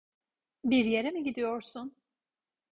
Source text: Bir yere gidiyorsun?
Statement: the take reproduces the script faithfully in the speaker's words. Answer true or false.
false